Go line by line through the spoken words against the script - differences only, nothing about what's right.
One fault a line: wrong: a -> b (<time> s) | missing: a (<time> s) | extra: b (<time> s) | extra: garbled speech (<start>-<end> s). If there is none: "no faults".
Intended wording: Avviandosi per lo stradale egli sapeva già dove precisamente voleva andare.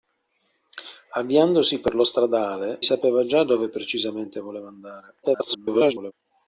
missing: egli (2.8 s)
extra: garbled speech (5.2-6.1 s)